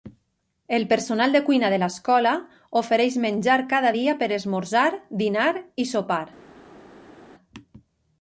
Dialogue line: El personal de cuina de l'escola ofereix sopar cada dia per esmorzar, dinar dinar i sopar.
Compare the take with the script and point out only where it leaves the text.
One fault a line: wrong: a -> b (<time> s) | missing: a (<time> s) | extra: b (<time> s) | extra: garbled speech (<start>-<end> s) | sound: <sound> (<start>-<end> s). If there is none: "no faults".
wrong: sopar -> menjar (3.3 s)
missing: dinar (5.5 s)